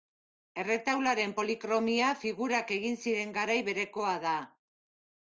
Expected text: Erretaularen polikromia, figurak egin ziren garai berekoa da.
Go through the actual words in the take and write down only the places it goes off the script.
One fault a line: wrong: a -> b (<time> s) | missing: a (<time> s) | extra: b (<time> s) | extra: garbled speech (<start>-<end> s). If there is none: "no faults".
no faults